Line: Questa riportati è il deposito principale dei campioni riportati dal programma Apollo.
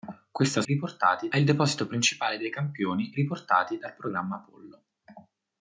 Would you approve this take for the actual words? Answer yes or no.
yes